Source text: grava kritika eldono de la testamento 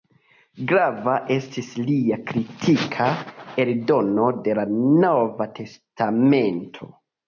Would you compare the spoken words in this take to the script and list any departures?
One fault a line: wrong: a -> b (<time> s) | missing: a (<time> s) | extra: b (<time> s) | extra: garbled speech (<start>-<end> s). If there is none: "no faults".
extra: estis lia (1.4 s)
extra: nova (5.1 s)